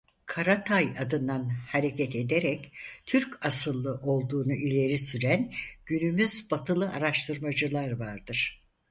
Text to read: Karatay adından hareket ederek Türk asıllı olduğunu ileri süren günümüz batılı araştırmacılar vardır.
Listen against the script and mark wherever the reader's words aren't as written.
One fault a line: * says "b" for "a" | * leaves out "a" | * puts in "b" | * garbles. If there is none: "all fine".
all fine